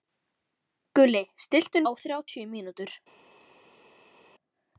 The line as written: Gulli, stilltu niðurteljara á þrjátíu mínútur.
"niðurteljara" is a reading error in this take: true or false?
true